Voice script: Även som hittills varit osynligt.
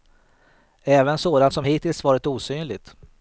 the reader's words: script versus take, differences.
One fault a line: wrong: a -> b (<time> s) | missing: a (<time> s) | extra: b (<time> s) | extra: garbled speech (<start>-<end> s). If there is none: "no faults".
extra: sådant (1.2 s)